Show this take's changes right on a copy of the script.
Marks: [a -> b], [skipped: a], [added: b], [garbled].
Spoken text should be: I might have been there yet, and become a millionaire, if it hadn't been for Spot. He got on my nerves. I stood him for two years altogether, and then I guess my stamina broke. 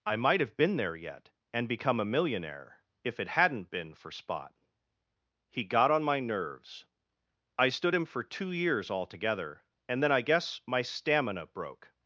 I might have been there yet, and become a millionaire, if it hadn't been for Spot. He got on my nerves. I stood him for two years altogether, and then I guess my stamina broke.